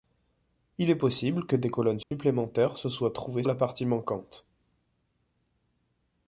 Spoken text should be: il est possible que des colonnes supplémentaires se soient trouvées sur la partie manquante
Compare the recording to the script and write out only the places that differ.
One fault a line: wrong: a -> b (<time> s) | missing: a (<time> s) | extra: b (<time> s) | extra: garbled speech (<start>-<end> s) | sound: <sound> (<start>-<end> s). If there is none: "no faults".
sound: dropout (2.0-2.1 s)
missing: sur (3.4 s)